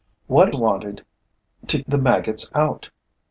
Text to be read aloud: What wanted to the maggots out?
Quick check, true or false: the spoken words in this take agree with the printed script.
true